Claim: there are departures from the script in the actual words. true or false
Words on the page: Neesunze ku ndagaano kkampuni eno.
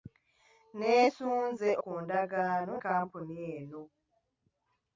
false